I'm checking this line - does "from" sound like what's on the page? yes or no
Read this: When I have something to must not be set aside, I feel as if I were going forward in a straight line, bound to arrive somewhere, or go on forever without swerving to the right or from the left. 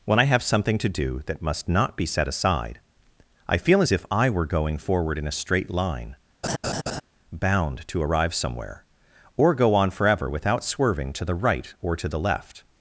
no